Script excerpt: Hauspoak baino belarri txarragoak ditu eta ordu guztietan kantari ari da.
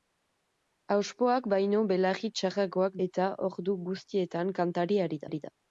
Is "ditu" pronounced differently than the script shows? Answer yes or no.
yes